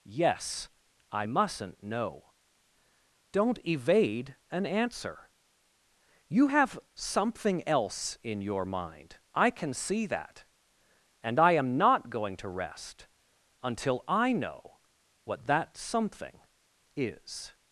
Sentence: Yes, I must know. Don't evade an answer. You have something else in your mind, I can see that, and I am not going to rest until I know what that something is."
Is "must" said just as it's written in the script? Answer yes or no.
no